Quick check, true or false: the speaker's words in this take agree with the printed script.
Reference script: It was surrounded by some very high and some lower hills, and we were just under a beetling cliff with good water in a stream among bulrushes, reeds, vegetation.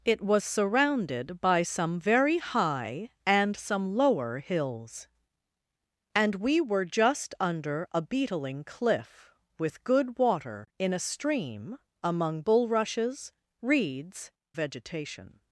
true